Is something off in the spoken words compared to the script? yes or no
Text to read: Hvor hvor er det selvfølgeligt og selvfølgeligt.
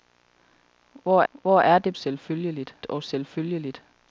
no